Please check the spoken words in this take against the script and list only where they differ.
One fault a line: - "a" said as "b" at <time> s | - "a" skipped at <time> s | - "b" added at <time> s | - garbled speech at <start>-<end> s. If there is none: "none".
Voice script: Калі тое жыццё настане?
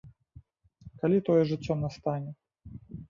none